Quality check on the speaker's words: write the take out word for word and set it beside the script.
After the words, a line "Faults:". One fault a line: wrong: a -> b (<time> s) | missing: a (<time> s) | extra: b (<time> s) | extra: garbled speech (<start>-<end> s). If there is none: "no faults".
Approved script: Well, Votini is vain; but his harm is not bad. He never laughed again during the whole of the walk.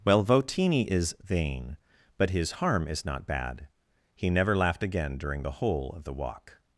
Well, Votini is vain; but his harm is not bad. He never laughed again during the whole of the walk.
Faults:
no faults